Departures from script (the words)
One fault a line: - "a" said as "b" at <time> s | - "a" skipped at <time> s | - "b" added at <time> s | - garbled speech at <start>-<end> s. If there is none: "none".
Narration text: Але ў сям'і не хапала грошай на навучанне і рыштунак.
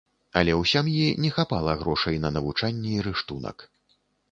none